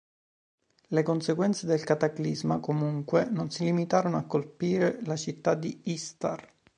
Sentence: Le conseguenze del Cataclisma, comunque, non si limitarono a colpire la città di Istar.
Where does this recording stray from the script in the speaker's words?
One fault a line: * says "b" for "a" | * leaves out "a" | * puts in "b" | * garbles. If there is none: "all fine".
all fine